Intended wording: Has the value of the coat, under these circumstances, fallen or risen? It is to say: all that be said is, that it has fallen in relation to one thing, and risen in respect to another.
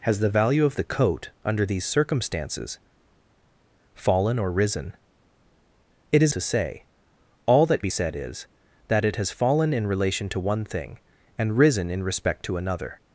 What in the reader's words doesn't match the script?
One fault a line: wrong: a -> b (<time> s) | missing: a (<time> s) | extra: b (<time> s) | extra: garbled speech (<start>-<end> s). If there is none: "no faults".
no faults